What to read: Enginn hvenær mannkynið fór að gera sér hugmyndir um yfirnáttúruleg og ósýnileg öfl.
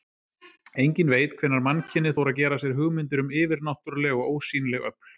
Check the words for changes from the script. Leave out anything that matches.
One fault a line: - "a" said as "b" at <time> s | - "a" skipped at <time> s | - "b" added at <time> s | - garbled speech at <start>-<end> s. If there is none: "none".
- "veit" added at 1.1 s